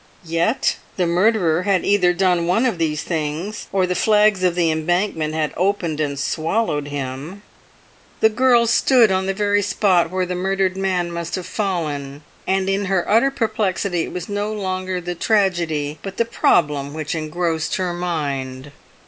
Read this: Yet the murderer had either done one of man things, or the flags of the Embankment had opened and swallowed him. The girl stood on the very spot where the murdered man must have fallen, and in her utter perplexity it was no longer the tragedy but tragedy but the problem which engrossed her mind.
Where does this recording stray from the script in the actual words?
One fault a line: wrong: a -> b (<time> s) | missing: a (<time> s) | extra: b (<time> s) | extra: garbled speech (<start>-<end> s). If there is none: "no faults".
wrong: man -> these (2.8 s)
missing: tragedy but (16.2 s)